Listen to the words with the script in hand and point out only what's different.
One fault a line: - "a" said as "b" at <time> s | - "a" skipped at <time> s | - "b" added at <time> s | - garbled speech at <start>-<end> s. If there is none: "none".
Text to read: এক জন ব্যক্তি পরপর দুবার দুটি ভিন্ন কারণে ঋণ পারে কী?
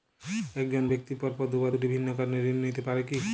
- "নিতে" added at 2.6 s